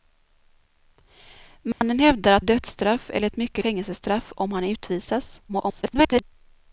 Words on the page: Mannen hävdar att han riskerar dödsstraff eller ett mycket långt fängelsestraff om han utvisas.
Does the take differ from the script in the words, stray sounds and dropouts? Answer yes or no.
yes